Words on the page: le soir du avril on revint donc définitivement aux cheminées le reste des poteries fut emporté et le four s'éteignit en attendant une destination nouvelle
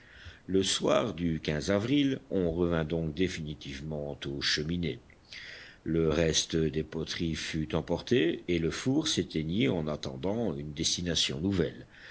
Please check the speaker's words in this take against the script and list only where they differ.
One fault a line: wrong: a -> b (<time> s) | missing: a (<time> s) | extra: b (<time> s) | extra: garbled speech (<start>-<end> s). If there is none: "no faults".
no faults